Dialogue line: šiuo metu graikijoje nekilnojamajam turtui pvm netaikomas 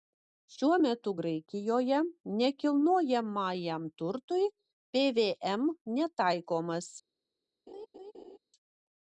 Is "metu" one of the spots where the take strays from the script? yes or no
no